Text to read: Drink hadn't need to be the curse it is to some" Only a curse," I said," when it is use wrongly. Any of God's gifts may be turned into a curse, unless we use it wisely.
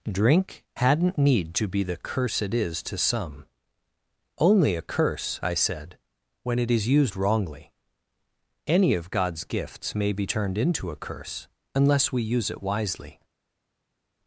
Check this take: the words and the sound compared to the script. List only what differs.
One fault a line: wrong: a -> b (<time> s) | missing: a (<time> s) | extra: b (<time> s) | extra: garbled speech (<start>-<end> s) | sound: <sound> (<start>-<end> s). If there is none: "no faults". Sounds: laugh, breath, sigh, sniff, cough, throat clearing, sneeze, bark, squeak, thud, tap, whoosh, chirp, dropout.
wrong: use -> used (6.9 s)